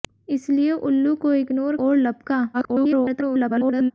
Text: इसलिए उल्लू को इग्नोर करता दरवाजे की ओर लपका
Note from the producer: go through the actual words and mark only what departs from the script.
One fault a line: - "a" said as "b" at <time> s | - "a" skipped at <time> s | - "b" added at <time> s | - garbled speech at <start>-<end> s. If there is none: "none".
- "करता दरवाजे की" skipped at 1.8 s
- garbled speech at 2.5-3.9 s